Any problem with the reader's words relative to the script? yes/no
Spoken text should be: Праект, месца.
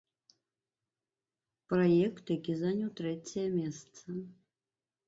yes